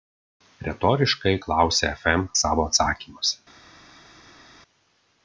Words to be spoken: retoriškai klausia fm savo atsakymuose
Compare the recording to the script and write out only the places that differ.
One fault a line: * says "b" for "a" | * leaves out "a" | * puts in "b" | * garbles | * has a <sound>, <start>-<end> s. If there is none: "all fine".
all fine